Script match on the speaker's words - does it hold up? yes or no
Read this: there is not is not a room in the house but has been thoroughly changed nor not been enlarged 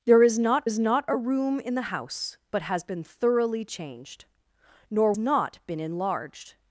yes